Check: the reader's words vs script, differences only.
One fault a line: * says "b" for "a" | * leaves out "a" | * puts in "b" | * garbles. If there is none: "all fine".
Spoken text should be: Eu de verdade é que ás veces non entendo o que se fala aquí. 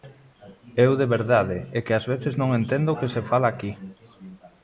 all fine